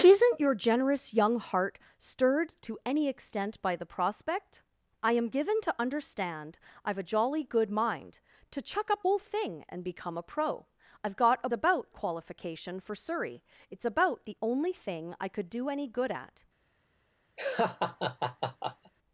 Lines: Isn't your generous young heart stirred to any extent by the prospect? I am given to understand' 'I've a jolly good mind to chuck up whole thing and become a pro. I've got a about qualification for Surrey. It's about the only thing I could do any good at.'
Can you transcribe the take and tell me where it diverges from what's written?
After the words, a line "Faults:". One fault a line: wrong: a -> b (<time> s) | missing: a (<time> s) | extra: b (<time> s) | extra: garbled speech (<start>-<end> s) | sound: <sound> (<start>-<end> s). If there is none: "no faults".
Isn't your generous young heart stirred to any extent by the prospect? I am given to understand' 'I've a jolly good mind to chuck up whole thing and become a pro. I've got a about qualification for Surrey. It's about the only thing I could do any good at.'
Faults:
sound: laugh (17.4-18.9 s)